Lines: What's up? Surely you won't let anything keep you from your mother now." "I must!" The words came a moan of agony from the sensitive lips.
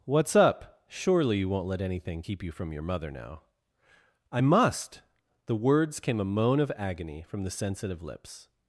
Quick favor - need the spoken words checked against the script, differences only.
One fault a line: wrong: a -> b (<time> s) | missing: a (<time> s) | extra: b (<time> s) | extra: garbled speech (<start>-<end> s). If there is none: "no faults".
no faults